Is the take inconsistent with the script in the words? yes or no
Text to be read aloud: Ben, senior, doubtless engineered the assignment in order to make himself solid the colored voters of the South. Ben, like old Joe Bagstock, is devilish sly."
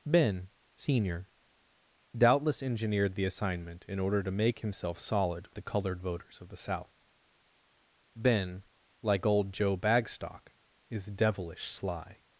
no